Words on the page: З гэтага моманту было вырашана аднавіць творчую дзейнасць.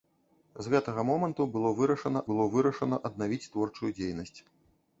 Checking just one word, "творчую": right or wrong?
right